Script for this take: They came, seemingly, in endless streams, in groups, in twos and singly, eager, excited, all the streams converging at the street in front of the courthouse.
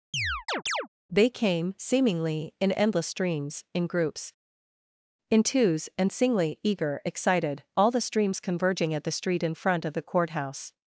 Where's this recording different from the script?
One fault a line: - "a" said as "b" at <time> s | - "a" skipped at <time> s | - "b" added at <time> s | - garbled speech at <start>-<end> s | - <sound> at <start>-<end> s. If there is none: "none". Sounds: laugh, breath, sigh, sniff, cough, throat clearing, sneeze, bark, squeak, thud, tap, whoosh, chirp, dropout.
- chirp at 0.1-0.9 s